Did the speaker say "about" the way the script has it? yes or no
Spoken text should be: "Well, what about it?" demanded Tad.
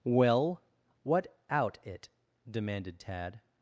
no